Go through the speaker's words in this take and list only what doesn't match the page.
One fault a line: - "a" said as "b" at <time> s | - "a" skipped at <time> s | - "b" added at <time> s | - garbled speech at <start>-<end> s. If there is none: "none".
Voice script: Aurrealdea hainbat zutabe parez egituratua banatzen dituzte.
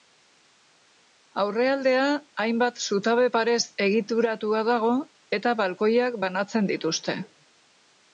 - "dago eta balkoiak" added at 4.7 s